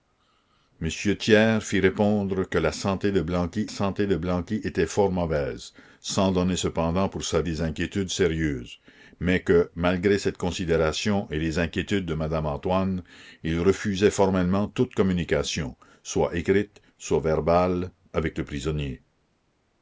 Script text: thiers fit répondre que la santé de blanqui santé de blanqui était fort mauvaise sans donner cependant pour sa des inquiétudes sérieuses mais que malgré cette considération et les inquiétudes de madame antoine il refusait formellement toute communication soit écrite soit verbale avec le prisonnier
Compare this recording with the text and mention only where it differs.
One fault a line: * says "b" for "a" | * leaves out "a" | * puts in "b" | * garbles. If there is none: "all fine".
all fine